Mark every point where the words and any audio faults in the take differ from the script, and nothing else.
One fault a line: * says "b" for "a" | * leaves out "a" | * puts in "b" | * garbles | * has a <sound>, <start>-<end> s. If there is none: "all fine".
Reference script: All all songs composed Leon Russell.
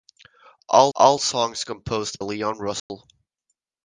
* has a dropout, 2.8-2.9 s